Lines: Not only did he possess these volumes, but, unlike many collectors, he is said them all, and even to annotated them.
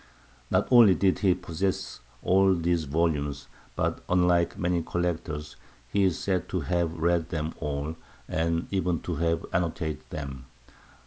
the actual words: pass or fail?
fail